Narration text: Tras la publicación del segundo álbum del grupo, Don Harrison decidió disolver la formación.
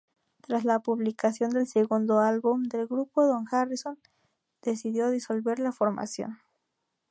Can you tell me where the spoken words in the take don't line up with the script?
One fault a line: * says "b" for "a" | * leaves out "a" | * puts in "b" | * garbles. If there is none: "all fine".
all fine